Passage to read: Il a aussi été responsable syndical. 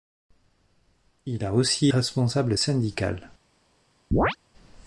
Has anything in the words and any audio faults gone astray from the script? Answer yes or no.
yes